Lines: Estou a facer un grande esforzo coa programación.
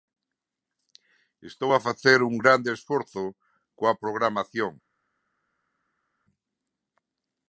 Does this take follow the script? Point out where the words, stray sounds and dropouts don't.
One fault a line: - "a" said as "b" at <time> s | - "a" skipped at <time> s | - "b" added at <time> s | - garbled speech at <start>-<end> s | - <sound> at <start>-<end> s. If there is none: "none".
none